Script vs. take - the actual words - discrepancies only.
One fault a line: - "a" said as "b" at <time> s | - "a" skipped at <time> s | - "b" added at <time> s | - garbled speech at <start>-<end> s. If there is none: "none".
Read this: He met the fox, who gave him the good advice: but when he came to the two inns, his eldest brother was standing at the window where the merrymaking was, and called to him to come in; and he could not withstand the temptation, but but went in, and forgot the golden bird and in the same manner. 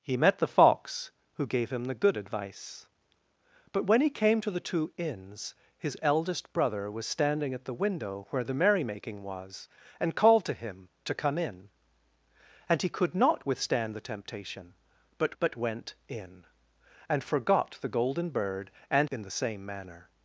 none